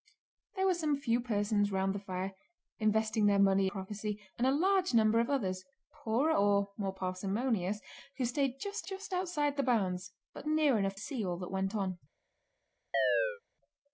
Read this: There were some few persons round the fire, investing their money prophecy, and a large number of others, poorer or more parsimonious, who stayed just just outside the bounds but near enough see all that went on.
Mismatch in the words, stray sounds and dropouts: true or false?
true